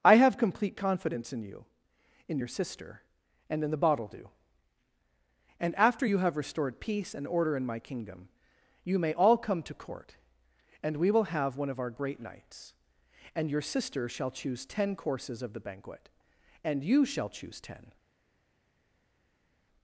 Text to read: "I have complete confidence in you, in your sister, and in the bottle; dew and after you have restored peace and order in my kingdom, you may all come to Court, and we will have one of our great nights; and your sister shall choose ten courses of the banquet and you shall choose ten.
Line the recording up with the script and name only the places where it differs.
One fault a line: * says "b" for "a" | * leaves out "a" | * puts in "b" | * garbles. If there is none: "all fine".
all fine